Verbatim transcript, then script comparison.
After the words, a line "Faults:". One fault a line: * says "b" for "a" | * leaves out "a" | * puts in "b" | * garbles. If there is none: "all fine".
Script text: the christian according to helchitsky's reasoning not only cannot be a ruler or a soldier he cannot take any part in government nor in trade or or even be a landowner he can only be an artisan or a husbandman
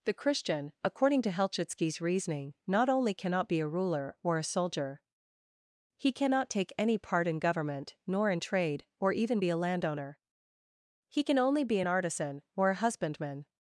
the christian according to helchitsky's reasoning not only cannot be a ruler or a soldier he cannot take any part in government nor in trade or even be a landowner he can only be an artisan or a husbandman
Faults:
* leaves out "or"